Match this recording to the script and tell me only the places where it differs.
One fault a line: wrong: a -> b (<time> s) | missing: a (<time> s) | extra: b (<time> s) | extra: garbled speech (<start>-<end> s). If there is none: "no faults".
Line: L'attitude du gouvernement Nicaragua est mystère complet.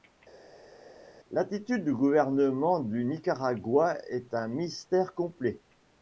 extra: du (2.8 s)
extra: un (4.3 s)